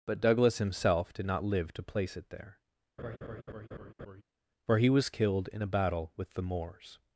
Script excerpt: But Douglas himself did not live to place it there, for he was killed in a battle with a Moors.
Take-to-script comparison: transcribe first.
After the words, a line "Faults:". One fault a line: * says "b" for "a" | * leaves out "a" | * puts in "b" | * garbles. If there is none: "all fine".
But Douglas himself did not live to place it there, for he was killed in a battle with the Moors.
Faults:
* says "the" for "a"